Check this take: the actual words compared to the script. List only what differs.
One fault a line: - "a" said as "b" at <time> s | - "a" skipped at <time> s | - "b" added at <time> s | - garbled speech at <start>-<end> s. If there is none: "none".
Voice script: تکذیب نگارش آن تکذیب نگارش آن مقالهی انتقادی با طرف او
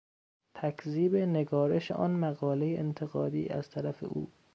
- "تکذیب نگارش آن" skipped at 2.1 s
- "با" said as "از" at 3.5 s